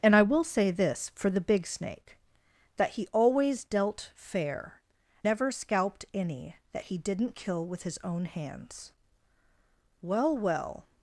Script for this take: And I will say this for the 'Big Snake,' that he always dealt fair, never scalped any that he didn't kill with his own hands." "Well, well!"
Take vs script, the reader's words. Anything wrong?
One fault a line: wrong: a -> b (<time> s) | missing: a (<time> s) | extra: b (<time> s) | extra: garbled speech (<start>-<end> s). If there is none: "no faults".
no faults